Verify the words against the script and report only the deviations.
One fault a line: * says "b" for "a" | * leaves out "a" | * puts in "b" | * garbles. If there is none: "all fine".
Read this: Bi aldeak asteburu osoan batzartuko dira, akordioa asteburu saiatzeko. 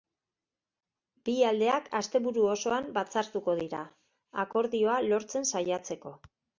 * says "lortzen" for "asteburu"